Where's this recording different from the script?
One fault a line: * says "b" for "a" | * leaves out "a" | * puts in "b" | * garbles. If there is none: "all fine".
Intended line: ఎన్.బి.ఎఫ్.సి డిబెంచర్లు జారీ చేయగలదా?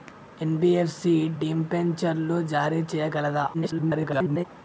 * garbles